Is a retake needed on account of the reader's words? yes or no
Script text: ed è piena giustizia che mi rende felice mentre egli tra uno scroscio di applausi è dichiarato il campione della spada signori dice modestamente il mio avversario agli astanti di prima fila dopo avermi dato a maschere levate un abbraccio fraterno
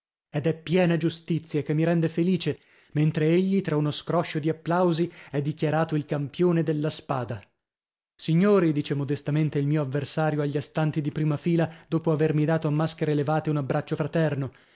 no